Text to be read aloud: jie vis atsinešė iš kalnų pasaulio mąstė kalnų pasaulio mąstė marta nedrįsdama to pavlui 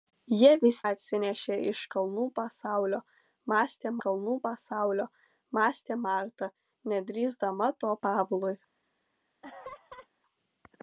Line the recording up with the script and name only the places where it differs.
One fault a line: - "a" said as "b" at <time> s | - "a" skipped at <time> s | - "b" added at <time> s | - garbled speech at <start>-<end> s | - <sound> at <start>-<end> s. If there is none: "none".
- laugh at 9.4-10.1 s